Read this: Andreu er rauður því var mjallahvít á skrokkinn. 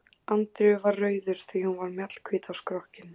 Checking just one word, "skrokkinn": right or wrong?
right